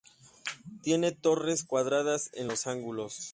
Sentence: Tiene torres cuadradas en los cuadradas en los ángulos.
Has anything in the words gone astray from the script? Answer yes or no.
yes